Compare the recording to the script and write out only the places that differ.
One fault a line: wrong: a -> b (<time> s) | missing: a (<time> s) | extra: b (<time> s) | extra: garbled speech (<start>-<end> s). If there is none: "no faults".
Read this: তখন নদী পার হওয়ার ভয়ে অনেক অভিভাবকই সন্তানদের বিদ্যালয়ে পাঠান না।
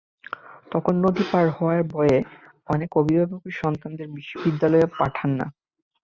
no faults